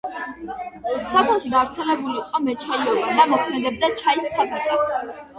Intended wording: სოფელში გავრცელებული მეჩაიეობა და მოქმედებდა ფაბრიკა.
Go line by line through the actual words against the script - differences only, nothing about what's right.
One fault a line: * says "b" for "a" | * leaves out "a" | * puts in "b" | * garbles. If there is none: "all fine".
* puts in "იყო"
* puts in "ჩაის"